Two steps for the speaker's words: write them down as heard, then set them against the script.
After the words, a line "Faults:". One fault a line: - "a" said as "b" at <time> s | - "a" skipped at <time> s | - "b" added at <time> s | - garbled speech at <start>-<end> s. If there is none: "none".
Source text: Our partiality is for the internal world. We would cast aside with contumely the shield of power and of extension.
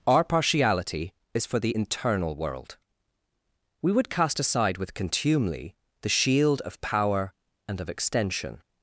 Our partiality is for the internal world. We would cast aside with contumely the shield of power and of extension.
Faults:
none